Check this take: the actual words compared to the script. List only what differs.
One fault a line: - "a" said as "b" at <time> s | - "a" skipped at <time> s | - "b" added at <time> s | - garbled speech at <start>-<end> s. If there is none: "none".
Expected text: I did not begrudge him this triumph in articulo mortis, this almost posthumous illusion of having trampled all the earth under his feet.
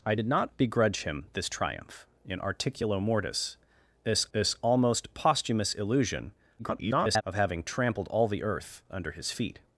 - "this" added at 4.3 s
- garbled speech at 6.6-7.2 s